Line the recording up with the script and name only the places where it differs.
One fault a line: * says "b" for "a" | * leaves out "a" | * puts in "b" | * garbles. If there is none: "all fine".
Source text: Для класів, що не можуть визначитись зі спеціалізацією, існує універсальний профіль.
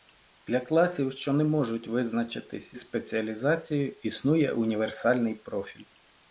* leaves out "зі"